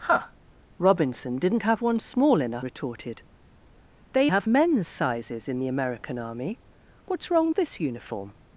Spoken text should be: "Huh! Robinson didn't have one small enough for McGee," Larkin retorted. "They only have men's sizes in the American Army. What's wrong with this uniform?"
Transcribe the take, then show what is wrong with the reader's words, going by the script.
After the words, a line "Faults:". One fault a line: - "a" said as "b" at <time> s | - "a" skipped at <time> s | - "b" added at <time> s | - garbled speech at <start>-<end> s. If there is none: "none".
"Huh! Robinson didn't have one small enough retorted. "They have men's sizes in the American Army. What's wrong this uniform?"
Faults:
- "for McGee Larkin" skipped at 2.6 s
- "only" skipped at 4.3 s
- "with" skipped at 7.5 s